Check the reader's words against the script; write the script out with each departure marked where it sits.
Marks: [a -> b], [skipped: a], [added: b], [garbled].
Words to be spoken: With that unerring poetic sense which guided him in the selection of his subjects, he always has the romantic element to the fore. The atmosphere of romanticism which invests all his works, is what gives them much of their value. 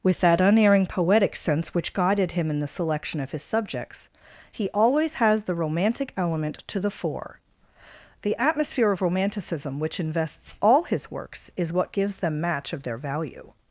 With that unerring poetic sense which guided him in the selection of his subjects, he always has the romantic element to the fore. The atmosphere of romanticism which invests all his works, is what gives them [much -> match] of their value.